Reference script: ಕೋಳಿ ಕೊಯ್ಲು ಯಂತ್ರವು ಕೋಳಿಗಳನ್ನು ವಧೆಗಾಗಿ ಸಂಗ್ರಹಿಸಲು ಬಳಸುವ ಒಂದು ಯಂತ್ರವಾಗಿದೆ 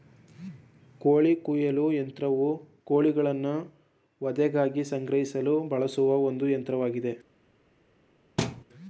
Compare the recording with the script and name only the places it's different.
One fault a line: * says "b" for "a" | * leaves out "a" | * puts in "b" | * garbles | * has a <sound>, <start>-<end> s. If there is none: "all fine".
* has a thud, 8.4-8.6 s